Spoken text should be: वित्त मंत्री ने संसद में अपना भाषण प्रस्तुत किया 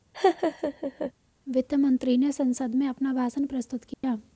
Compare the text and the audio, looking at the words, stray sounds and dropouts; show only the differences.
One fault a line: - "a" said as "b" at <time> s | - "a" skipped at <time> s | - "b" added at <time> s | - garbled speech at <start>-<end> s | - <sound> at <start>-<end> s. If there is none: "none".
- laugh at 0.1-1.1 s
- dropout at 3.9-4.0 s